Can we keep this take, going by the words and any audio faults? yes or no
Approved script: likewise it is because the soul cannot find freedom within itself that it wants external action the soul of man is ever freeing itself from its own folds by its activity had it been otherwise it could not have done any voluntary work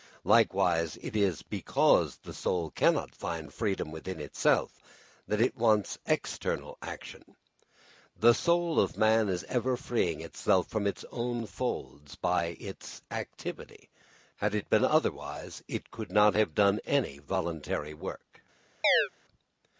no